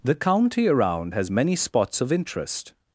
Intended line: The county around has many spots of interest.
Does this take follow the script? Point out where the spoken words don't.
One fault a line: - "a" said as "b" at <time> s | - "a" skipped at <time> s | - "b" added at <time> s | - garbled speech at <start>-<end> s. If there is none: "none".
none